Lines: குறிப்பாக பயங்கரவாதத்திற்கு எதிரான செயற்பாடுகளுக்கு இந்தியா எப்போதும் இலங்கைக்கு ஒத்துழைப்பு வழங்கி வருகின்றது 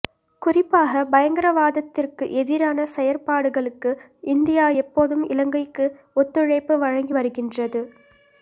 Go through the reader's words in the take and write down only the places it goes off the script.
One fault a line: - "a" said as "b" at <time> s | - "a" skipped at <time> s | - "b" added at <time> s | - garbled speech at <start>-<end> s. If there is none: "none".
none